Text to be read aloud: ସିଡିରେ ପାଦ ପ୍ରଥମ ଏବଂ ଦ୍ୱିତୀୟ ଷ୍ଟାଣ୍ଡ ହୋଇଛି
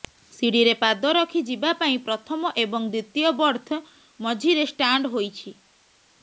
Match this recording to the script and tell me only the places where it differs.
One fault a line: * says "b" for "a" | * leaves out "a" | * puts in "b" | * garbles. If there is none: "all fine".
* puts in "ରଖି ଯିବା ପାଇଁ"
* puts in "ବର୍ଥ ମଝିରେ"